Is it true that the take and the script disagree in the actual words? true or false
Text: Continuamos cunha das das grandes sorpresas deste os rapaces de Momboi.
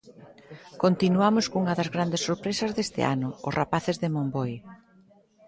true